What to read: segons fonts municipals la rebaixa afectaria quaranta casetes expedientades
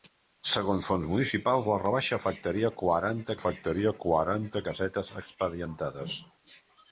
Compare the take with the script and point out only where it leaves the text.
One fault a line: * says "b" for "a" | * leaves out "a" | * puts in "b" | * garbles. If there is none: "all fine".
* puts in "afectaria quaranta"